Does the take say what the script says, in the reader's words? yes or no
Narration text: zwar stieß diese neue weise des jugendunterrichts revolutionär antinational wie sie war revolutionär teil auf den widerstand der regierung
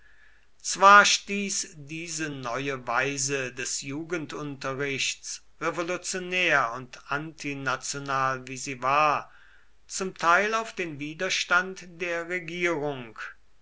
no